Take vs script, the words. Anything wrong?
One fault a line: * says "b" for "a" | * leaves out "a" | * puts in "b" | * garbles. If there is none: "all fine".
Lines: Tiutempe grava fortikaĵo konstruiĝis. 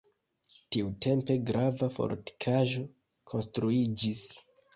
all fine